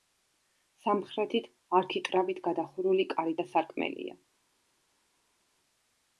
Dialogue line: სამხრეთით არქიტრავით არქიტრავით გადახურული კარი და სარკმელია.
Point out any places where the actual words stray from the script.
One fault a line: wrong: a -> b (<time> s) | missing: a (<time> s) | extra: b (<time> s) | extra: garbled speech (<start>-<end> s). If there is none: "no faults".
missing: არქიტრავით (2.4 s)